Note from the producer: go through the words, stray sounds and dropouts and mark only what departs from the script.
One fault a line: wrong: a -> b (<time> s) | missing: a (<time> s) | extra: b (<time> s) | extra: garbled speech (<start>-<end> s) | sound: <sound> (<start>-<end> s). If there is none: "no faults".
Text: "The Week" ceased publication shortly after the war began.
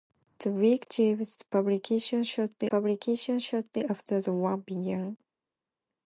extra: publication shortly (2.7 s)